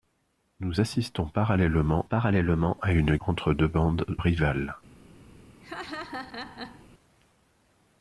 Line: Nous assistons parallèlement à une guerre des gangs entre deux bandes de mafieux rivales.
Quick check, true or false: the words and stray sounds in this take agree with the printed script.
false